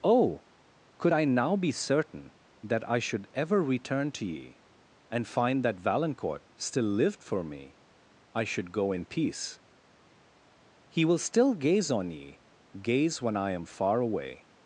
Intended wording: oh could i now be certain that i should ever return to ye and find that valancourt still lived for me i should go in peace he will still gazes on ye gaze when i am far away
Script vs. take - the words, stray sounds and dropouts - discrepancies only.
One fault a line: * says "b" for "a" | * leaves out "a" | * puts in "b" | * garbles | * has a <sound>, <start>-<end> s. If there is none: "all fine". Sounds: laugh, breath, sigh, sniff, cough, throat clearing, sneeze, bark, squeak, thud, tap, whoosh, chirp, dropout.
* says "gaze" for "gazes"